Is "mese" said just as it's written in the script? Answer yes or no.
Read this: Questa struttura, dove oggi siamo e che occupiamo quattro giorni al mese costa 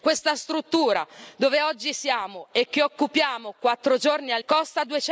no